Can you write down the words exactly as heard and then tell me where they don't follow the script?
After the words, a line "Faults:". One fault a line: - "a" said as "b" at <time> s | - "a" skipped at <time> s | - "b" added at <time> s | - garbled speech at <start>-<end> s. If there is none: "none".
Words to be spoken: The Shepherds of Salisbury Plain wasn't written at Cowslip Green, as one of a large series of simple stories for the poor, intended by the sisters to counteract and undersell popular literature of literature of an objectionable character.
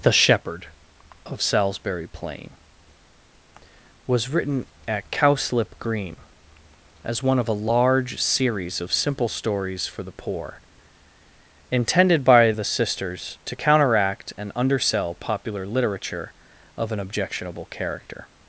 The Shepherd of Salisbury Plain was written at Cowslip Green, as one of a large series of simple stories for the poor, intended by the sisters to counteract and undersell popular literature of an objectionable character.
Faults:
- "Shepherds" said as "Shepherd" at 0.1 s
- "wasn't" said as "was" at 4.1 s
- "literature of" skipped at 16.9 s